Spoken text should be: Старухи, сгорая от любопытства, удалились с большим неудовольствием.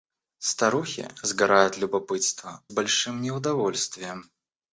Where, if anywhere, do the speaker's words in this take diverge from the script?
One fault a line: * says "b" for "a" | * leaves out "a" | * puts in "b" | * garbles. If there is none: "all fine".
* leaves out "удалились"